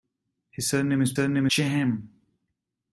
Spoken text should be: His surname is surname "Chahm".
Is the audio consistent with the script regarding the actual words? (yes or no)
yes